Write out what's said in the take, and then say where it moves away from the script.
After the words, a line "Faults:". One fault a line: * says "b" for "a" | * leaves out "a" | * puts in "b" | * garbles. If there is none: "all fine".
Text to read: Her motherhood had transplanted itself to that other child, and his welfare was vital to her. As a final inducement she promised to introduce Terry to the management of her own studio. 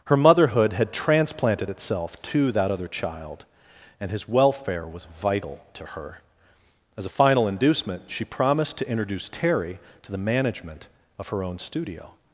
Her motherhood had transplanted itself to that other child, and his welfare was vital to her. As a final inducement she promised to introduce Terry to the management of her own studio.
Faults:
all fine